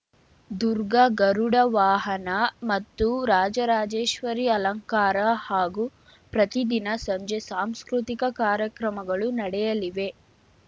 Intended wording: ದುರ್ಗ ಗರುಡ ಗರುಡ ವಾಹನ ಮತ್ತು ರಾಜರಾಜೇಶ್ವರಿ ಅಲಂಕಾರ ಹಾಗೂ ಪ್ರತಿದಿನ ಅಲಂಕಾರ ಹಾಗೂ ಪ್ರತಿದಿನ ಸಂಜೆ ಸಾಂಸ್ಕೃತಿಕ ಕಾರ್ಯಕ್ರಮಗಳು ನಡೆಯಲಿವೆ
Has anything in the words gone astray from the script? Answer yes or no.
yes